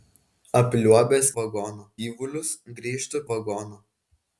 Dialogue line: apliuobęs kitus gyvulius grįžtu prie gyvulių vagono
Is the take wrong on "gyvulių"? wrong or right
wrong